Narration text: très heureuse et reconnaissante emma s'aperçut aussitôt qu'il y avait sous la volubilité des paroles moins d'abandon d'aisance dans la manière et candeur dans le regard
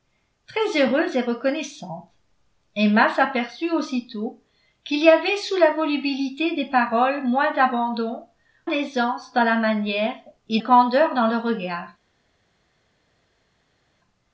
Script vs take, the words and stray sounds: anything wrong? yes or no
no